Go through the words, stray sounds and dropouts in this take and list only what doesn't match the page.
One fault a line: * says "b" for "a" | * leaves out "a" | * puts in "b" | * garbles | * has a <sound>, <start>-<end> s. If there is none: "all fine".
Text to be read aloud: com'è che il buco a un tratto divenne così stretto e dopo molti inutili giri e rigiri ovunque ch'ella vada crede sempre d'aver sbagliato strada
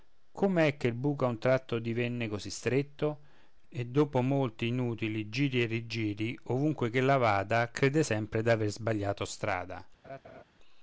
* has a laugh, 10.0-10.4 s